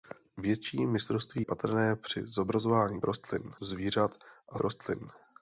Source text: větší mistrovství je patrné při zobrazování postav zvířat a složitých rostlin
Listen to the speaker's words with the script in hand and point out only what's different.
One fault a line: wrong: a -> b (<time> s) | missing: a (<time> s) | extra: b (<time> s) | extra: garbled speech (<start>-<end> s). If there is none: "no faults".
missing: je (1.4 s)
wrong: postav -> rostlin (3.0 s)
missing: složitých (4.6 s)